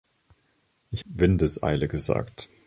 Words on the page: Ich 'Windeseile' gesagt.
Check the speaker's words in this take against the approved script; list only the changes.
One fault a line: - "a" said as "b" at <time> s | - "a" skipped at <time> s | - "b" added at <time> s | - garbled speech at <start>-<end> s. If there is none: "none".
none